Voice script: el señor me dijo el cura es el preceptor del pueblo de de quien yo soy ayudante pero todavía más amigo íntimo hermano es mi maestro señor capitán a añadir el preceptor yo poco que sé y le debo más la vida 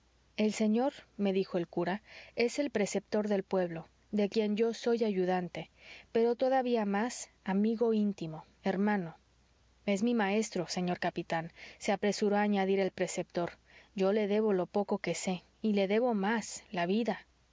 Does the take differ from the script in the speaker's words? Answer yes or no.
yes